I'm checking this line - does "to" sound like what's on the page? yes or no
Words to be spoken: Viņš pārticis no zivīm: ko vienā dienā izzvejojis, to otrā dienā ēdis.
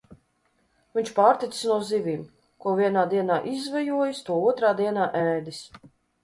yes